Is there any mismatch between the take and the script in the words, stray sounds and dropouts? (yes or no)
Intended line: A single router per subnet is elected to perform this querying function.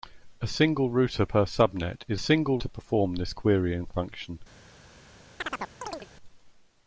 yes